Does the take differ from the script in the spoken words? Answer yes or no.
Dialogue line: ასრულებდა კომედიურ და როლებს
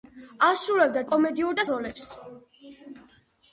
no